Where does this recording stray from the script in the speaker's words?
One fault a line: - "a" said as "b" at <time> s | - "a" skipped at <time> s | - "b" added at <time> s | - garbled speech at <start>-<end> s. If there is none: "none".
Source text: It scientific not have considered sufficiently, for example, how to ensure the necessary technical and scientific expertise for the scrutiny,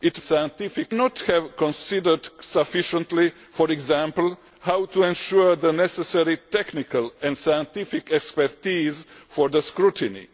none